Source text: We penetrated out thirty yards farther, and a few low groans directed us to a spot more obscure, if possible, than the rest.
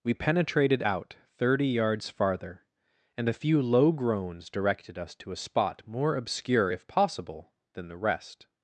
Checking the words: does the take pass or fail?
pass